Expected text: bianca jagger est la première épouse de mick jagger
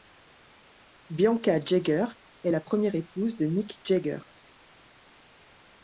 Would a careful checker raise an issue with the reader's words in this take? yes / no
no